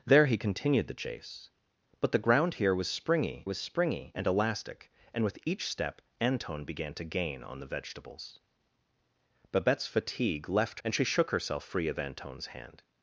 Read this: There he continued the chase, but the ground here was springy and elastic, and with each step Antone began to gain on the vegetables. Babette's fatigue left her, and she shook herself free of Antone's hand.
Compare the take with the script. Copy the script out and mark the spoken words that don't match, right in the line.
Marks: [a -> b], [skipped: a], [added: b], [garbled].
There he continued the chase, but the ground here was springy [added: was springy] and elastic, and with each step Antone began to gain on the vegetables. Babette's fatigue left [skipped: her,] and she shook herself free of Antone's hand.